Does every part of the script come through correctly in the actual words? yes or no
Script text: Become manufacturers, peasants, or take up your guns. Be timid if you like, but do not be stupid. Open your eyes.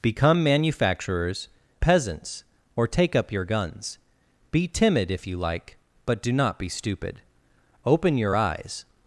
yes